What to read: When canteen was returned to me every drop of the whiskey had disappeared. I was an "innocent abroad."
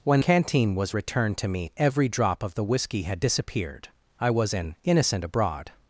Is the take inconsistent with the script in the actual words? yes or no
no